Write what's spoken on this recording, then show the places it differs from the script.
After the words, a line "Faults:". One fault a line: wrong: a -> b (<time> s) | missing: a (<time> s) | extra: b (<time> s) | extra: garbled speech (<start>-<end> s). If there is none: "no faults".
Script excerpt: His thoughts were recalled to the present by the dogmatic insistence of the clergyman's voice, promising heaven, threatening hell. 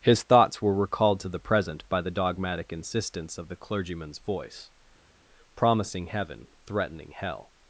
His thoughts were recalled to the present by the dogmatic insistence of the clergyman's voice, promising heaven, threatening hell.
Faults:
no faults